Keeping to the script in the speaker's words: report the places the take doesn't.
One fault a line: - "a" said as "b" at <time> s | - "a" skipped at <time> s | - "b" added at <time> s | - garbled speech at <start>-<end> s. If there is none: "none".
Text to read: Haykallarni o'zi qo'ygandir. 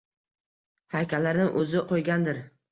none